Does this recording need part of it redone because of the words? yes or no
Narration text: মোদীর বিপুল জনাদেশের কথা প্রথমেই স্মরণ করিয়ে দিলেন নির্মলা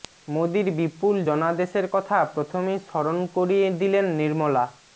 no